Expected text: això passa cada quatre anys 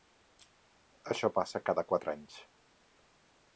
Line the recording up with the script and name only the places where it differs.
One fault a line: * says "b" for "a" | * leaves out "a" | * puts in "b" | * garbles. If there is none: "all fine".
all fine